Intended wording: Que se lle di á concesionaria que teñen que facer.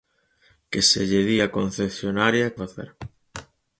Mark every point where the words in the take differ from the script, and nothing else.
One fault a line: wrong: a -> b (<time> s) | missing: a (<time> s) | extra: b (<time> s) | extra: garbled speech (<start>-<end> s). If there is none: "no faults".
missing: que teñen que (2.5 s)